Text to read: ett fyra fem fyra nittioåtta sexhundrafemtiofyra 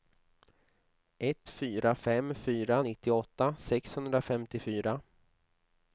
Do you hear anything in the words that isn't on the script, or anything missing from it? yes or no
no